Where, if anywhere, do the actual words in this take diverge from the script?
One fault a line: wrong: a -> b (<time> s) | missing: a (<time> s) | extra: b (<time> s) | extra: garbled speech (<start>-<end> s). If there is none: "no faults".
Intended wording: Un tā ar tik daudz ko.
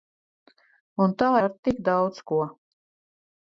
no faults